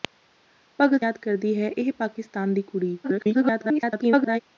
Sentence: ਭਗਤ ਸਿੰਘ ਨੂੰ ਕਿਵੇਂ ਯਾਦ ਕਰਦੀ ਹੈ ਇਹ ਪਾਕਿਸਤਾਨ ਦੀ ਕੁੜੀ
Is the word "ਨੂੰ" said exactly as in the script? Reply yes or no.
no